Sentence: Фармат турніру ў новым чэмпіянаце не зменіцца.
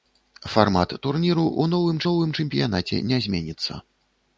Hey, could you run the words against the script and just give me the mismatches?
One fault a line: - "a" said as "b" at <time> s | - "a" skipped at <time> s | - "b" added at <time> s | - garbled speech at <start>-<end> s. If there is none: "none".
- "новым" added at 2.1 s